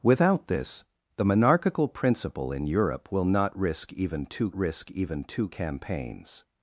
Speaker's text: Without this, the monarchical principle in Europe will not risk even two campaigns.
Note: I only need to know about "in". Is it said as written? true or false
true